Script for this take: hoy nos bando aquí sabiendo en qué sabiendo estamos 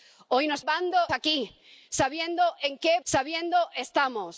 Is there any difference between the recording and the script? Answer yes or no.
no